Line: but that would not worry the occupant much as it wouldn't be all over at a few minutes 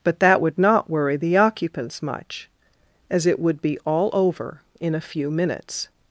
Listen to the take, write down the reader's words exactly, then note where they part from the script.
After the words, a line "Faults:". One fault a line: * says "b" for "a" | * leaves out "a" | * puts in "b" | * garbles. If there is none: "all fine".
but that would not worry the occupants much as it would be all over in a few minutes
Faults:
* says "occupants" for "occupant"
* says "would" for "wouldn't"
* says "in" for "at"